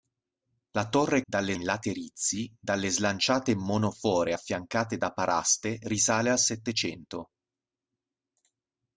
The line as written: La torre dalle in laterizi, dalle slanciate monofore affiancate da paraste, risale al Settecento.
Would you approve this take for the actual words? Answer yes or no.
yes